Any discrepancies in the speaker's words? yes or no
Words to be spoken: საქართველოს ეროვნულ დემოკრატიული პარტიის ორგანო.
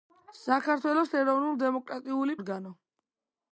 yes